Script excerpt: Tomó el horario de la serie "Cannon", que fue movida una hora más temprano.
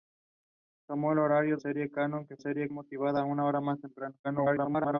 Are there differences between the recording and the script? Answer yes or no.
yes